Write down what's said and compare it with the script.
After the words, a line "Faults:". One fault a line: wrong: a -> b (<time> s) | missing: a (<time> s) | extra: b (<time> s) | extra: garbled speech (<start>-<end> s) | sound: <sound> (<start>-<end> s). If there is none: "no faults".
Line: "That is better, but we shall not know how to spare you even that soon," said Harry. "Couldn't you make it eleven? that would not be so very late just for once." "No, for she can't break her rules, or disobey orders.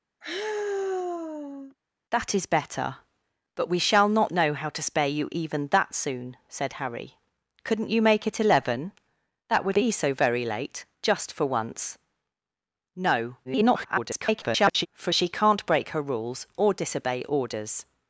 "That is better, but we shall not know how to spare you even that soon," said Harry. "Couldn't you make it eleven? that would be so very late just for once." "No, [garbled] for she can't break her rules, or disobey orders.
Faults:
sound: sigh (0.2-1.8 s)
missing: not (9.8 s)
extra: garbled speech (13.4-14.9 s)